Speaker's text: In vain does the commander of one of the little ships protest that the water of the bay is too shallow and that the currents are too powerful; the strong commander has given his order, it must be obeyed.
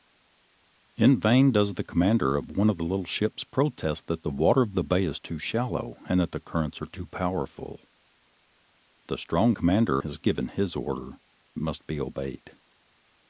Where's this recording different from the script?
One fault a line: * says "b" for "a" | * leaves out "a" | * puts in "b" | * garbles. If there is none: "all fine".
all fine